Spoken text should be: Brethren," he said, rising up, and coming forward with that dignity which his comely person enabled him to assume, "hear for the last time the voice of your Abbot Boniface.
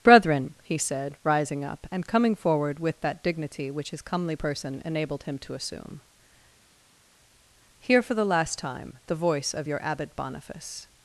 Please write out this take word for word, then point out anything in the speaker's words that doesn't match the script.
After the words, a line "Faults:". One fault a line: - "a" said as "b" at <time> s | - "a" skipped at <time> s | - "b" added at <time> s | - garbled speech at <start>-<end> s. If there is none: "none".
Brethren," he said, rising up, and coming forward with that dignity which his comely person enabled him to assume, "hear for the last time the voice of your Abbot Boniface.
Faults:
none